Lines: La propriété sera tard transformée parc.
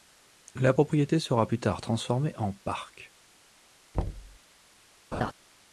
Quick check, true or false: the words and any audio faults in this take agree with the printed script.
false